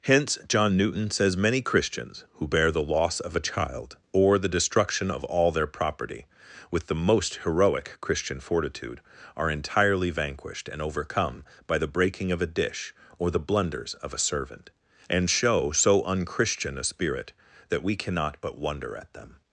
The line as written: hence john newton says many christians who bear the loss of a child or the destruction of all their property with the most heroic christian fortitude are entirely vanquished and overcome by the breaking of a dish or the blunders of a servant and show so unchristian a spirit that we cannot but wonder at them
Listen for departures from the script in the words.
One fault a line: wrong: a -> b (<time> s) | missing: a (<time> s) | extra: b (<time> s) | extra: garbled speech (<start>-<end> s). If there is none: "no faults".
no faults